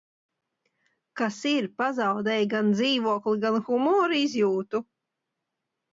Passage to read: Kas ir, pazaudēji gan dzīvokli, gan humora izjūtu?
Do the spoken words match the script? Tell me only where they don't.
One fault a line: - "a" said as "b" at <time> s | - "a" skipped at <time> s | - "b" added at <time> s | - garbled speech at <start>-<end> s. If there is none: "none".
none